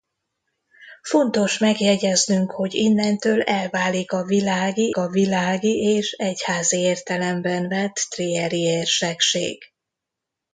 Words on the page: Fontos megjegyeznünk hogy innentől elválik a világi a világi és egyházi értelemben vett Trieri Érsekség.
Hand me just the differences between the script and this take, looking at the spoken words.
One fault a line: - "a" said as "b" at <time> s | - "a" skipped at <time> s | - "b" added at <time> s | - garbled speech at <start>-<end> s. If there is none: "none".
none